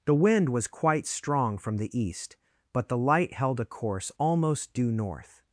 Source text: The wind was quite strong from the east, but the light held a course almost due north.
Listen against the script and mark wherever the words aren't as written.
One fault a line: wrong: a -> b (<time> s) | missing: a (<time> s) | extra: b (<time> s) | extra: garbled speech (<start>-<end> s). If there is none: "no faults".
no faults